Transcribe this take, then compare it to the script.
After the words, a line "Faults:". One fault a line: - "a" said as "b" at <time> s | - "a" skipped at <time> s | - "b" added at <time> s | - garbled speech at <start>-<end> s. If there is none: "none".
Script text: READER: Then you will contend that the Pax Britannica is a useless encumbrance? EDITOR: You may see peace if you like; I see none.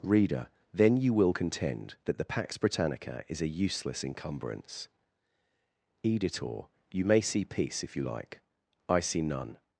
READER: Then you will contend that the Pax Britannica is a useless encumbrance? EDITOR: You may see peace if you like; I see none.
Faults:
none